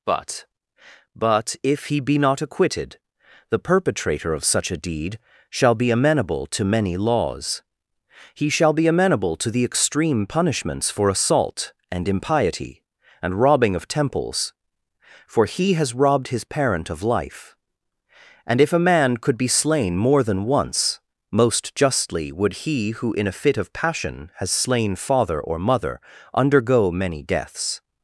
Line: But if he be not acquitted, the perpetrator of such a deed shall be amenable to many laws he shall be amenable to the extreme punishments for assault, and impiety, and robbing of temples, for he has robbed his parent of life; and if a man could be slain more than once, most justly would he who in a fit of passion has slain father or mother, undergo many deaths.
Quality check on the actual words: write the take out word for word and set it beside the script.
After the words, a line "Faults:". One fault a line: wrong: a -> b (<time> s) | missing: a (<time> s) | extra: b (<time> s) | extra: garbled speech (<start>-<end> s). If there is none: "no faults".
But but if he be not acquitted, the perpetrator of such a deed shall be amenable to many laws he shall be amenable to the extreme punishments for assault, and impiety, and robbing of temples, for he has robbed his parent of life; and if a man could be slain more than once, most justly would he who in a fit of passion has slain father or mother, undergo many deaths.
Faults:
extra: but (1.1 s)